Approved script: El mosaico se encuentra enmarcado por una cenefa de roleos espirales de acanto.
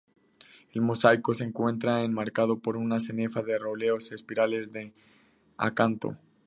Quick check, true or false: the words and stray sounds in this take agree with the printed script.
true